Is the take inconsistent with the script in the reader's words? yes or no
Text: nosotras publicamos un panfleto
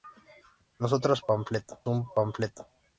yes